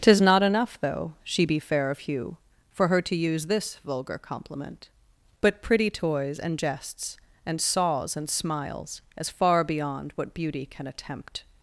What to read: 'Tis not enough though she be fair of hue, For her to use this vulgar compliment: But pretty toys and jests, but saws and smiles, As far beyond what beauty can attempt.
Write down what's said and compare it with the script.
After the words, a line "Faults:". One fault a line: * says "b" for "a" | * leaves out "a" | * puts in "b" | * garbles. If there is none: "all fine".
'Tis not enough though she be fair of hue, For her to use this vulgar compliment: But pretty toys and jests, and saws and smiles, As far beyond what beauty can attempt.
Faults:
* says "and" for "but"